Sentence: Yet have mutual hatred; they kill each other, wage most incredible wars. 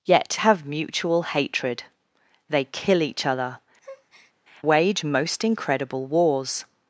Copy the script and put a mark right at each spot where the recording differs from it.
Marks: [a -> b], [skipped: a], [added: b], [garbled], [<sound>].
Yet have mutual hatred; they kill each other, [breath] wage most incredible wars.